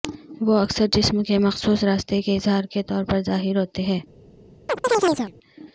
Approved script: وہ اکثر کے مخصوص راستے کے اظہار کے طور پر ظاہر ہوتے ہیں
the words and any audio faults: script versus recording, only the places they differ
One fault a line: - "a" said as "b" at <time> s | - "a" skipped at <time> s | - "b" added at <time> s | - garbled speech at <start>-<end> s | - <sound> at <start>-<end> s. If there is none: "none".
- "جسم" added at 0.9 s
- chirp at 4.7-5.3 s